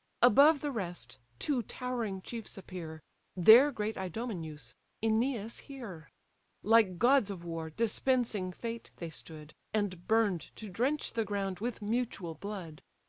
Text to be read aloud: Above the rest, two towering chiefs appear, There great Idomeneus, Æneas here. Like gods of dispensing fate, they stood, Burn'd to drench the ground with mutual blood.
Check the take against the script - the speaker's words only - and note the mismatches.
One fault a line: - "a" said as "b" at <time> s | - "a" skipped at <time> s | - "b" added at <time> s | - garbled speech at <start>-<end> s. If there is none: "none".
- "war" added at 7.5 s
- "And" added at 9.8 s